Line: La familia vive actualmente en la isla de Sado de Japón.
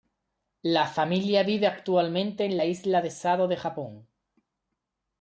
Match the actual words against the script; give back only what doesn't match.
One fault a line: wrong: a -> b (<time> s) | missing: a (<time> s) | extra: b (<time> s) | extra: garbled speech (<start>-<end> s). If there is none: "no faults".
no faults